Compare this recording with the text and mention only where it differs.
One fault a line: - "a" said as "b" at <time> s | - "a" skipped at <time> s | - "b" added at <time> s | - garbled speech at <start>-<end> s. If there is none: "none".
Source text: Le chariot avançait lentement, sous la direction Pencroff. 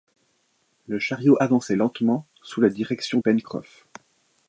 none